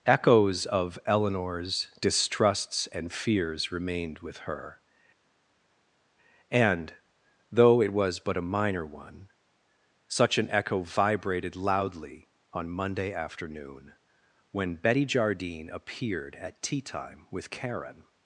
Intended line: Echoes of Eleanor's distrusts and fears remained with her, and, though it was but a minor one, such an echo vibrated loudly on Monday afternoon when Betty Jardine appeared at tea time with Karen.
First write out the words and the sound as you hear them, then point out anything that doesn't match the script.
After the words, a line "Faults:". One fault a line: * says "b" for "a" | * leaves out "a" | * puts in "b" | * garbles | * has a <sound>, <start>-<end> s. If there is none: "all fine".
Echoes of Eleanor's distrusts and fears remained with her, and, though it was but a minor one, such an echo vibrated loudly on Monday afternoon when Betty Jardine appeared at tea time with Karen.
Faults:
all fine